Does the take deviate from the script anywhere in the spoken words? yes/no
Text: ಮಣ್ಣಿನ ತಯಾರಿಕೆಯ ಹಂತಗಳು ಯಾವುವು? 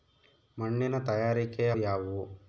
yes